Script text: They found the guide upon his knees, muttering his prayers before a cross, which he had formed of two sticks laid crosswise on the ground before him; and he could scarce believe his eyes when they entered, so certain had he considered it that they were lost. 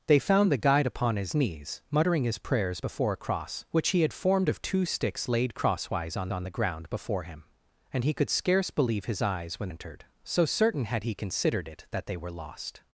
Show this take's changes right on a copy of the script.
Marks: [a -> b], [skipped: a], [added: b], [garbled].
They found the guide upon his knees, muttering his prayers before a cross, which he had formed of two sticks laid crosswise on [added: on] the ground before him; and he could scarce believe his eyes when [skipped: they] entered, so certain had he considered it that they were lost.